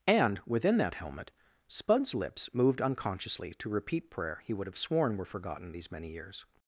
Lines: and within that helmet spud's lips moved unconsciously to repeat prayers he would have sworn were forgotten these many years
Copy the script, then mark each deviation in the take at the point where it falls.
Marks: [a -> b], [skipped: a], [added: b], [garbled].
and within that helmet spud's lips moved unconsciously to repeat [prayers -> prayer] he would have sworn were forgotten these many years